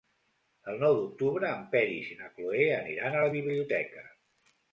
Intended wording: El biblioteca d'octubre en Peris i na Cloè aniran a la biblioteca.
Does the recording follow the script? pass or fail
fail